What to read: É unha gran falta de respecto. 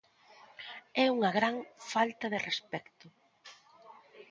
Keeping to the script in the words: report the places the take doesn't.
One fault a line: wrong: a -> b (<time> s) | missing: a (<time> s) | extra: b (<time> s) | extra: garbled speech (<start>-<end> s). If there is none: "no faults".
no faults